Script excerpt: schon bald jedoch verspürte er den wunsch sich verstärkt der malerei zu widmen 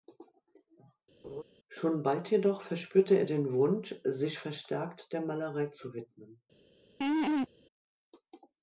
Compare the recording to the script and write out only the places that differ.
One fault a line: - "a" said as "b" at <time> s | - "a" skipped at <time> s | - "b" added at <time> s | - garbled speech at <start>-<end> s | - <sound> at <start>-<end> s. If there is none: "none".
- laugh at 1.2-1.4 s
- laugh at 7.0-7.5 s